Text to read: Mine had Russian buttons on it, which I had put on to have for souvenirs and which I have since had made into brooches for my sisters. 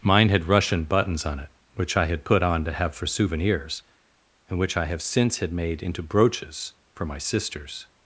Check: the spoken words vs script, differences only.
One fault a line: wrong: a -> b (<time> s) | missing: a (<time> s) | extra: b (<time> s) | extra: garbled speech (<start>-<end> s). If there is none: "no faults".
no faults